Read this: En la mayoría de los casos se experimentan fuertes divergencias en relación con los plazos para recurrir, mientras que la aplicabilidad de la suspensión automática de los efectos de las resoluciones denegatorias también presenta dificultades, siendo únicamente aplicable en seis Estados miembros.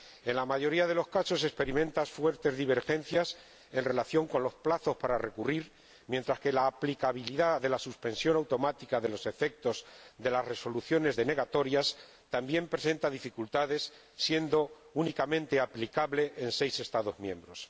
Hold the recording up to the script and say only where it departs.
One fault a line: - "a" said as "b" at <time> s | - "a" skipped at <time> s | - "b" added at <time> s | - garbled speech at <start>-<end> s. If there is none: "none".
none